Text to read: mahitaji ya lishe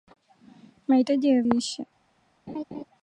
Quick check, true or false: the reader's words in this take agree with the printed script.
true